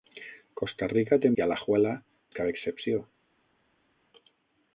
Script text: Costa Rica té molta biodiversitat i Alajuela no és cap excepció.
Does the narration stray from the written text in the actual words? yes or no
yes